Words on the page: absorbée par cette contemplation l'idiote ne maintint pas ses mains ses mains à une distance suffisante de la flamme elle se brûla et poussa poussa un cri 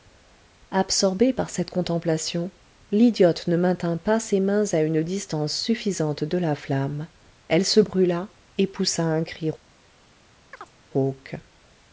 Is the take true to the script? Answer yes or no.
no